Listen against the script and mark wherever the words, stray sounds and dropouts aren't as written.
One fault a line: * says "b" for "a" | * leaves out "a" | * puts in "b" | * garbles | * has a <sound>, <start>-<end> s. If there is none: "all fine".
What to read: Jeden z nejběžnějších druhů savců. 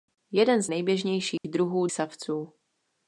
* has a dropout, 1.4-1.4 s